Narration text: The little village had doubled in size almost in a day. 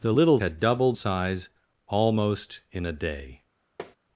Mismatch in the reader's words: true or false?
true